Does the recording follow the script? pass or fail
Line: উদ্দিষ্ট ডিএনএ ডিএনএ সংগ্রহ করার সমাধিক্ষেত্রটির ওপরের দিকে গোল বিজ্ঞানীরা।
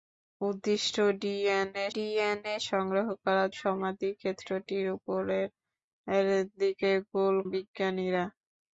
pass